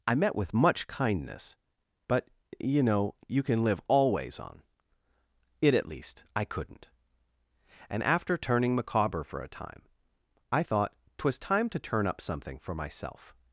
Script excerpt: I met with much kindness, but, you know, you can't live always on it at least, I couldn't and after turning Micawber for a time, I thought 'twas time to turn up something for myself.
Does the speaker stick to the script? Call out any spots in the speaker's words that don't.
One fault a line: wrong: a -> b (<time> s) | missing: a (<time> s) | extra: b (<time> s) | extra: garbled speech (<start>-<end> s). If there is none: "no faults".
wrong: can't -> can (3.4 s)